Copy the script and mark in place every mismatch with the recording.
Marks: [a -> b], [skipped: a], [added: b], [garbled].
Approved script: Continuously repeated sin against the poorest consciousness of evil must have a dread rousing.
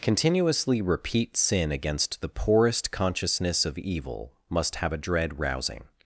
Continuously [repeated -> repeat] sin against the poorest consciousness of evil must have a dread rousing.